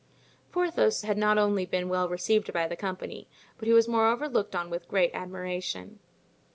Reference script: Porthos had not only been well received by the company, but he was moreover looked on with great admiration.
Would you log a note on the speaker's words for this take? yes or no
no